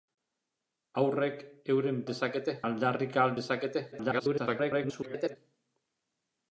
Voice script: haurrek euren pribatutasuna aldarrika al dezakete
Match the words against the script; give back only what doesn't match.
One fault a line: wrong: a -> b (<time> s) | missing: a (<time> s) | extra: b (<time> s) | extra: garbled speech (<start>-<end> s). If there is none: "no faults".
wrong: pribatutasuna -> dezakete (2.1 s)
extra: garbled speech (3.9-5.4 s)